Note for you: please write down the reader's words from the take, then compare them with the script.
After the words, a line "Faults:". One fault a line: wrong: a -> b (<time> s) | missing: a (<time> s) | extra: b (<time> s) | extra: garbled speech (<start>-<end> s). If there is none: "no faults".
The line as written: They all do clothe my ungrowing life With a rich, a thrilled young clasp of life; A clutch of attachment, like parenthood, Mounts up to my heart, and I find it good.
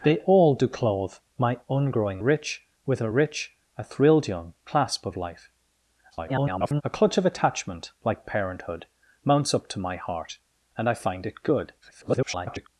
They all do clothe my ungrowing rich With a rich, a thrilled young clasp of life; [garbled] A clutch of attachment, like parenthood, Mounts up to my heart, and I find it good. [garbled]
Faults:
wrong: life -> rich (2.2 s)
extra: garbled speech (6.1-6.8 s)
extra: garbled speech (11.8-12.7 s)